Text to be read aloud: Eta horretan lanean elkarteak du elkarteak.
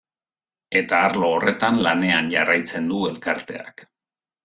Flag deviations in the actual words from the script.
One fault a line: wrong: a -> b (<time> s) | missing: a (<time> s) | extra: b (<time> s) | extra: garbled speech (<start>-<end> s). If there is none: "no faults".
extra: arlo (1.1 s)
wrong: elkarteak -> jarraitzen (2.4 s)